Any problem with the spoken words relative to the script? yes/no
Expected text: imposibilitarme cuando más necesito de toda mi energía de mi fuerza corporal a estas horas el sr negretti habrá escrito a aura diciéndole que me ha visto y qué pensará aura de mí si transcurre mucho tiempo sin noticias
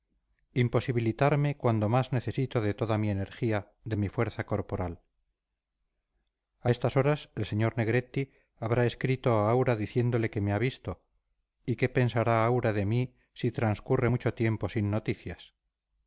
no